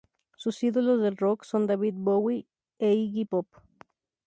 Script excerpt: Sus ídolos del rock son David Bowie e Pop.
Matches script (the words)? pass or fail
fail